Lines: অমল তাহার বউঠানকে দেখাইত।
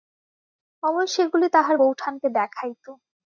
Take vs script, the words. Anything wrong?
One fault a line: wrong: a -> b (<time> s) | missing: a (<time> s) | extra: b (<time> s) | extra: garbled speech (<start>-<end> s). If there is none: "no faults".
extra: সেগুলি (1.1 s)